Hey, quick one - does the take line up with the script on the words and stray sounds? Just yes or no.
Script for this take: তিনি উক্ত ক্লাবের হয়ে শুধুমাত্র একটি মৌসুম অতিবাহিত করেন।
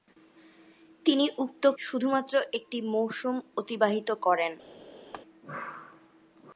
no